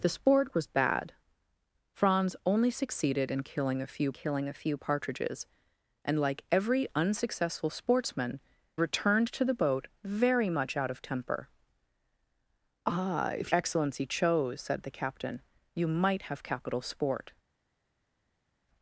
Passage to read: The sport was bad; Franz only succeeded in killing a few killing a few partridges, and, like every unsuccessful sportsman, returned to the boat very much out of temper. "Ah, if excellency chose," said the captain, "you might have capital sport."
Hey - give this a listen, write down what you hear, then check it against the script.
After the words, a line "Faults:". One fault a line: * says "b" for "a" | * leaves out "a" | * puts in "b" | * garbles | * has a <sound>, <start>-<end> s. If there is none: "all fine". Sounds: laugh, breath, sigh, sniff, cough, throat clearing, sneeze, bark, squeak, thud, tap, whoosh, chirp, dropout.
The sport was bad; Franz only succeeded in killing a few killing a few partridges, and, like every unsuccessful sportsman, returned to the boat very much out of temper. "Ah, if excellency chose," said the captain, "you might have capital sport."
Faults:
all fine